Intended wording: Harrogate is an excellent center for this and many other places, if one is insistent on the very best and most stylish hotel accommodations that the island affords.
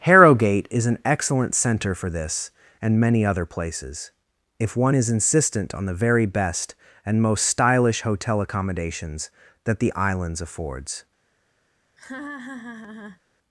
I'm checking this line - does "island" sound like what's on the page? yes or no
no